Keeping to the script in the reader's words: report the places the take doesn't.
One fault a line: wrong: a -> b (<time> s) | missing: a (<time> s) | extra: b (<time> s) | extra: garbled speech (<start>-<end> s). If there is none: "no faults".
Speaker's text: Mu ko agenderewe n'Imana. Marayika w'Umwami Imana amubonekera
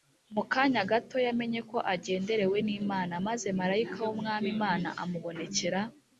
extra: kanya gato yamenye (0.5 s)
extra: Maze (3.3 s)